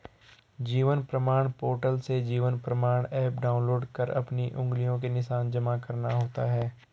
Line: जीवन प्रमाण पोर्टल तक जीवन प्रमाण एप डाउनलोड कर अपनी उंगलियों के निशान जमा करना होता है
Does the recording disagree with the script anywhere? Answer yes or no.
yes